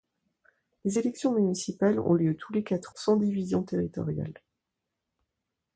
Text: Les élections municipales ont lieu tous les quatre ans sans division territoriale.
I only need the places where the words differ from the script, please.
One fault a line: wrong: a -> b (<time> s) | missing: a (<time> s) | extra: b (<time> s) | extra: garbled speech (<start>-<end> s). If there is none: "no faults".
missing: ans (2.9 s)